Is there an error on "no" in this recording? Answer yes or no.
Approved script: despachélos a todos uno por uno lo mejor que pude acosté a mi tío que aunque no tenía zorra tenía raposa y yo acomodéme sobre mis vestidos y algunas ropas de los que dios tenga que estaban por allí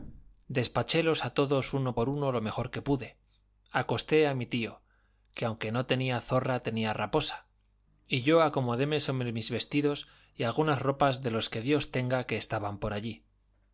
no